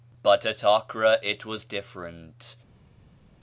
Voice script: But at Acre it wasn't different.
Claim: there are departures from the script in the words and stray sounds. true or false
true